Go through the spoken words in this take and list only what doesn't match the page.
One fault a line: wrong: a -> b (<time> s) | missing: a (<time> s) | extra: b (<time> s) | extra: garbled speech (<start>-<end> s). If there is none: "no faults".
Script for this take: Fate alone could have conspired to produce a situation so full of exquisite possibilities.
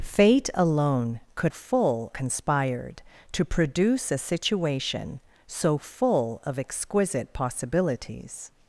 wrong: have -> full (1.5 s)